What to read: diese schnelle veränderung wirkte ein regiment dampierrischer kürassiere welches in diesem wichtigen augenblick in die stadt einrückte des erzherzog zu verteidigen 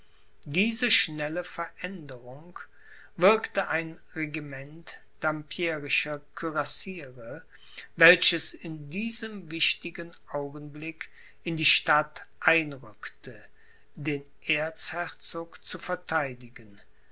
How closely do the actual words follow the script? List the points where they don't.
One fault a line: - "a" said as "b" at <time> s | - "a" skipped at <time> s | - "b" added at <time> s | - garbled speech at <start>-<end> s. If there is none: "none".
- "des" said as "den" at 13.9 s